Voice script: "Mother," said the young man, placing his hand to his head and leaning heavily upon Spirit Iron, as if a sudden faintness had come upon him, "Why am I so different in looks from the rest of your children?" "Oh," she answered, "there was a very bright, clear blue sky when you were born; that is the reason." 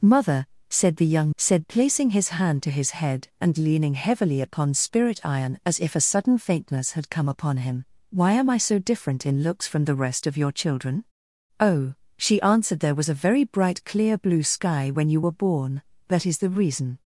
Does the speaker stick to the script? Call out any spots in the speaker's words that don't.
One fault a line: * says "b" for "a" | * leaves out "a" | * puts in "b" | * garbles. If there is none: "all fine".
* says "said" for "man"